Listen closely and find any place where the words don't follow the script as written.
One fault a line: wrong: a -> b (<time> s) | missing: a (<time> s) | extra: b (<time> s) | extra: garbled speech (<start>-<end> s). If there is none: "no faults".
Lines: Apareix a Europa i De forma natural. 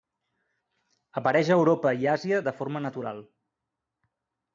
extra: Àsia (2.1 s)